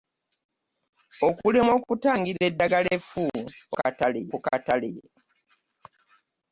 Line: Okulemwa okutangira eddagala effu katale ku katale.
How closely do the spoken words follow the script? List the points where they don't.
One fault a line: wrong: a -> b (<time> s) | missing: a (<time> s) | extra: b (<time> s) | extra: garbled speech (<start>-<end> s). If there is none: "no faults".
no faults